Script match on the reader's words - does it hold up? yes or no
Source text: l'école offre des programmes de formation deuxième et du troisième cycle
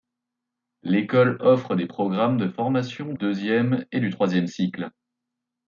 yes